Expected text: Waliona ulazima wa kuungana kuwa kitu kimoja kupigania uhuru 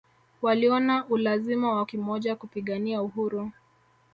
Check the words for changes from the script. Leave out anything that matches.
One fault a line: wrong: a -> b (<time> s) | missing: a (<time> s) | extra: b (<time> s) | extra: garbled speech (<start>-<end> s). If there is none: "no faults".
missing: kuungana kuwa kitu (1.9 s)